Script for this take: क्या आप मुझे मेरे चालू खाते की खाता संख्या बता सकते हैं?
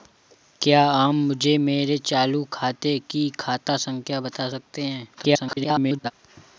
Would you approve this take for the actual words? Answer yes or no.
no